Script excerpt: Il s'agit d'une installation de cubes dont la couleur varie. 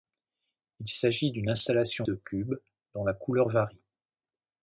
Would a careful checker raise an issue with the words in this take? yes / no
no